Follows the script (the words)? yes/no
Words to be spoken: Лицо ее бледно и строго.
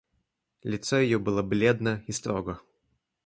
no